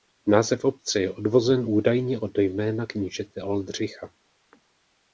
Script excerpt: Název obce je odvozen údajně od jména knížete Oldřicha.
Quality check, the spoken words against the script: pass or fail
pass